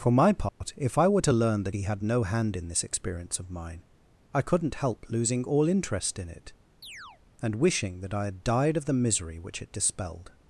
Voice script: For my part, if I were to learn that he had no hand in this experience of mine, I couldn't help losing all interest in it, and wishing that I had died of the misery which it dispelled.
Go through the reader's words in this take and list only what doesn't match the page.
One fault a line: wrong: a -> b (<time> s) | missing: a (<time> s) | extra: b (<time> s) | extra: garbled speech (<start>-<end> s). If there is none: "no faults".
no faults